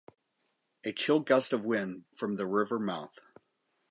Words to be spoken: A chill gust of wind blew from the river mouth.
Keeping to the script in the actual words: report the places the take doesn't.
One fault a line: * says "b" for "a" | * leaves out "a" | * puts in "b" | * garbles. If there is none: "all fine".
* leaves out "blew"